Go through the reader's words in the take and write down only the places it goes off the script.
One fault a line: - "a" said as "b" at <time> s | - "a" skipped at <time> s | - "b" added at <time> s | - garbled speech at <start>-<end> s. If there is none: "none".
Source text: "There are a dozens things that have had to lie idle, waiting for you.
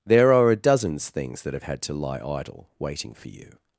none